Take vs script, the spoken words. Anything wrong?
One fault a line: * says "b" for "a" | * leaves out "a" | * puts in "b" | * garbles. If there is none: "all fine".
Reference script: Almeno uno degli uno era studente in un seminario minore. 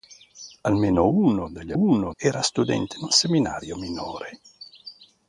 all fine